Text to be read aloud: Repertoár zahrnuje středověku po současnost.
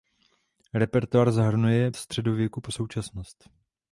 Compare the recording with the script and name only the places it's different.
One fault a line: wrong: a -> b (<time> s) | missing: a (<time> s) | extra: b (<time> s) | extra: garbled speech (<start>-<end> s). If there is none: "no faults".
no faults